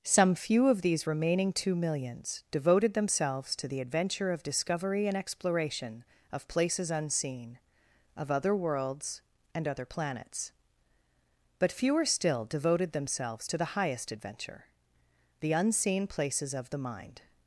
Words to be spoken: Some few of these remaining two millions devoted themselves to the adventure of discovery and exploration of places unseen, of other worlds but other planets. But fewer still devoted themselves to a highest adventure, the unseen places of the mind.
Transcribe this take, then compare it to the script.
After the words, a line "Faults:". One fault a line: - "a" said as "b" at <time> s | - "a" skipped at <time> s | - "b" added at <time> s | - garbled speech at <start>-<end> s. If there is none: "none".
Some few of these remaining two millions devoted themselves to the adventure of discovery and exploration of places unseen, of other worlds and other planets. But fewer still devoted themselves to the highest adventure, the unseen places of the mind.
Faults:
- "but" said as "and" at 9.5 s
- "a" said as "the" at 13.6 s